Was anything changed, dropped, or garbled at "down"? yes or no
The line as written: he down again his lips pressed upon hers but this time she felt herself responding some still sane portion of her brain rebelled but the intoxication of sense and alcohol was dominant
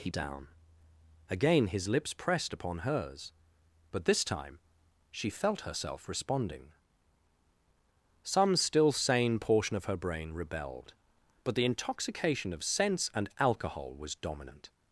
no